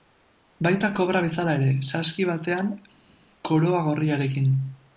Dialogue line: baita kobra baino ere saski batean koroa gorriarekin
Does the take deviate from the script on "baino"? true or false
true